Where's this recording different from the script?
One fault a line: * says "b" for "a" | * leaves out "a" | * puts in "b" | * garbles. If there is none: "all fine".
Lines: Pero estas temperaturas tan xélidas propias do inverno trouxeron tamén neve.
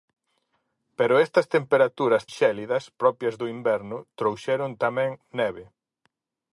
* leaves out "tan"